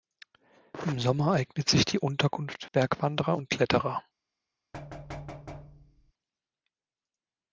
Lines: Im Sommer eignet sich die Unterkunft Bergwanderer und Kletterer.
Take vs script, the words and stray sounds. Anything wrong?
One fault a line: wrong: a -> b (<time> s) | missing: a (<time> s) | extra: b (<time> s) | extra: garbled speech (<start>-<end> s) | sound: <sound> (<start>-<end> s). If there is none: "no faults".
sound: thud (4.7-6.1 s)